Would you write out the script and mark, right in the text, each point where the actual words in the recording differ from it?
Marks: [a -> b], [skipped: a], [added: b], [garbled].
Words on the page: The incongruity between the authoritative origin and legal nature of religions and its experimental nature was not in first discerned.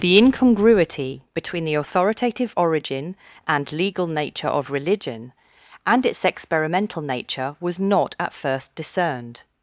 The incongruity between the authoritative origin and legal nature of [religions -> religion] and its experimental nature was not [in -> at] first discerned.